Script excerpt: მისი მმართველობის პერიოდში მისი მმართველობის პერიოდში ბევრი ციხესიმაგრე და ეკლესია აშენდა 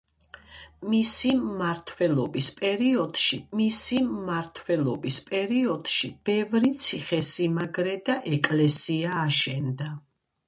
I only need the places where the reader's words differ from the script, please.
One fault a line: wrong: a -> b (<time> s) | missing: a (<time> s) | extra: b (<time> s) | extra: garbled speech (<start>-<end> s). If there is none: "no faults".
no faults